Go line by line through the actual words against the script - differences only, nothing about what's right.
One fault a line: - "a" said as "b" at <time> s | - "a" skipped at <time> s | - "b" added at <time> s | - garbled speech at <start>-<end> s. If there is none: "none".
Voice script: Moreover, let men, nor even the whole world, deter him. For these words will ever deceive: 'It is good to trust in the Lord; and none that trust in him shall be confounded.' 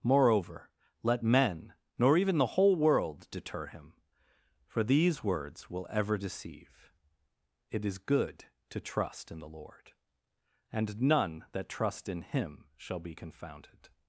none